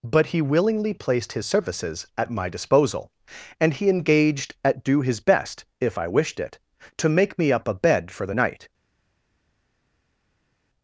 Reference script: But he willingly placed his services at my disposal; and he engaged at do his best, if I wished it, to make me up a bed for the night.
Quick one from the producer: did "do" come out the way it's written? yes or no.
yes